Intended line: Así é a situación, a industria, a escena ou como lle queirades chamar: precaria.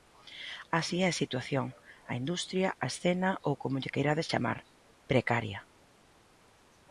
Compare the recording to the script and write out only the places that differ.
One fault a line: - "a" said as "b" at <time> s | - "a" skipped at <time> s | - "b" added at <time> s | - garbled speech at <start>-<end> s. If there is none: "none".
none